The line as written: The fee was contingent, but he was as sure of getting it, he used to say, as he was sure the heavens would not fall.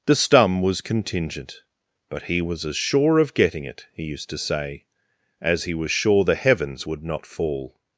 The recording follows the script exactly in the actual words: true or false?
false